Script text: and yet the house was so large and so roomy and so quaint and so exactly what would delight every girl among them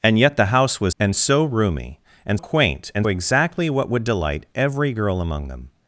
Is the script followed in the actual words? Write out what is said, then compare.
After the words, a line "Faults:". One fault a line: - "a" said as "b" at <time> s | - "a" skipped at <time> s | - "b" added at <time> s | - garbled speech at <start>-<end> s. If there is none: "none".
and yet the house was and so roomy and quaint and exactly what would delight every girl among them
Faults:
- "so large" skipped at 0.9 s
- "so" skipped at 2.4 s
- "so" skipped at 3.1 s